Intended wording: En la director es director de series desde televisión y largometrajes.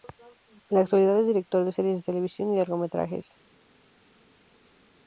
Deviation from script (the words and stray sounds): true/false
true